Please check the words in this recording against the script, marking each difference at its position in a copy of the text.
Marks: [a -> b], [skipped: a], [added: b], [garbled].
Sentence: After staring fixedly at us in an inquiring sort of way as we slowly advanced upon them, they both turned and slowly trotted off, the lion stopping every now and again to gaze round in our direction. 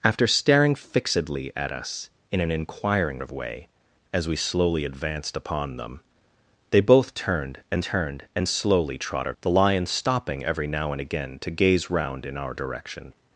After staring fixedly at us in an inquiring [skipped: sort] of way as we slowly advanced upon them, they both turned and [added: turned and] slowly trotted [skipped: off,] the lion stopping every now and again to gaze round in our direction.